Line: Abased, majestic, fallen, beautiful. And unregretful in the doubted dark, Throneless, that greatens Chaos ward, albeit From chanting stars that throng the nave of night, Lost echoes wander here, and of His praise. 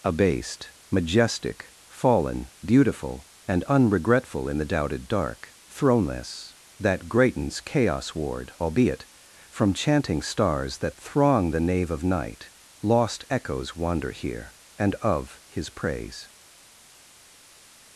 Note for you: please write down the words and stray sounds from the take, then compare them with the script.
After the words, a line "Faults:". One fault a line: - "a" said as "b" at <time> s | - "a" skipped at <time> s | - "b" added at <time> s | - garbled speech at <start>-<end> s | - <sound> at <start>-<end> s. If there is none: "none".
Abased, majestic, fallen, beautiful. And unregretful in the doubted dark, Throneless, that greatens Chaos ward, albeit From chanting stars that throng the nave of night, Lost echoes wander here, and of His praise.
Faults:
none